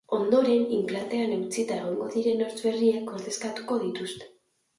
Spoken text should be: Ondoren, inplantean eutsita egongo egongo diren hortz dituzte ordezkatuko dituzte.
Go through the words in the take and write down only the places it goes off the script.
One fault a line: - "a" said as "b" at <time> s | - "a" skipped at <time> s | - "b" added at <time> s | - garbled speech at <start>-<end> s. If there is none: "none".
- "egongo" skipped at 2.1 s
- "dituzte" said as "berriek" at 2.6 s